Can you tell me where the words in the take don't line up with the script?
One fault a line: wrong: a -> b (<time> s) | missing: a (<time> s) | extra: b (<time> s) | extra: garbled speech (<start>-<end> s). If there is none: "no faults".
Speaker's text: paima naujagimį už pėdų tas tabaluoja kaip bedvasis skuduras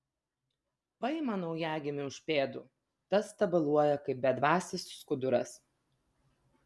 no faults